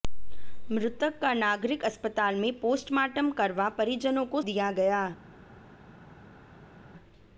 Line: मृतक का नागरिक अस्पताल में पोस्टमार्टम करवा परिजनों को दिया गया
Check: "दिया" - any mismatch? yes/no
no